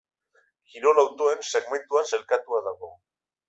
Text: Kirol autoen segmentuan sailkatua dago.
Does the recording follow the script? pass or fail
pass